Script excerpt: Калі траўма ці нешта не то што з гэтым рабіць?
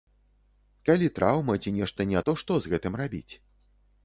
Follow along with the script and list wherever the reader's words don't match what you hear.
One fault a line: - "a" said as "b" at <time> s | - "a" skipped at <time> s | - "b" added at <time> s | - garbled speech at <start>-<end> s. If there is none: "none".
none